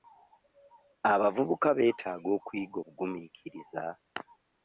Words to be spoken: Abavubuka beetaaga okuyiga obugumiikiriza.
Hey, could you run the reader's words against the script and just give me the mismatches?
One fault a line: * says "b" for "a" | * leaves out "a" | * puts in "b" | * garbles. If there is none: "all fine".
all fine